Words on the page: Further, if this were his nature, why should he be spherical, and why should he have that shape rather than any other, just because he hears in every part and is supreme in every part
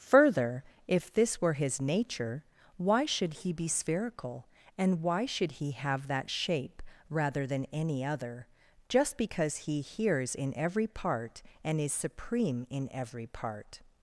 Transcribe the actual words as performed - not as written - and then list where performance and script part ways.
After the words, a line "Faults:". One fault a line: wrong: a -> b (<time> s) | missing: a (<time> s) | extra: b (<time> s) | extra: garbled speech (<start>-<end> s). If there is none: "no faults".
Further, if this were his nature, why should he be spherical, and why should he have that shape rather than any other, just because he hears in every part and is supreme in every part
Faults:
no faults